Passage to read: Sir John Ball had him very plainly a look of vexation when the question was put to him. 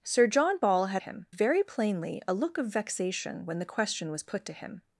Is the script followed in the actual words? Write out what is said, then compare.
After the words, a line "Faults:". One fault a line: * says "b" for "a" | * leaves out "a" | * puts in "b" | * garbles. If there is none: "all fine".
Sir John Ball had him very plainly a look of vexation when the question was put to him.
Faults:
all fine